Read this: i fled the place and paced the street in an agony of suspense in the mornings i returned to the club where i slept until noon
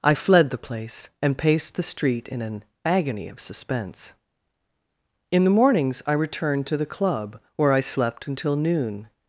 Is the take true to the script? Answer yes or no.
yes